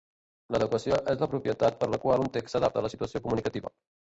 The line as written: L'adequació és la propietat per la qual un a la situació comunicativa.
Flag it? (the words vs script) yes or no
yes